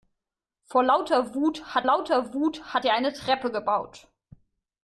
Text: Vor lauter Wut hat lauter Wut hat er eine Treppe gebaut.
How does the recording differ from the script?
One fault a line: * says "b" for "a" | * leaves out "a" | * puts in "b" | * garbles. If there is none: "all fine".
all fine